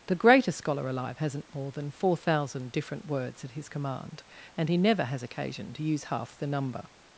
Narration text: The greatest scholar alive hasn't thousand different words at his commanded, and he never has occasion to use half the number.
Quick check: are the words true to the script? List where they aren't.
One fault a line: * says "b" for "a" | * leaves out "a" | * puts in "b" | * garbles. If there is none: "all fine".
* puts in "more than four"
* says "command" for "commanded"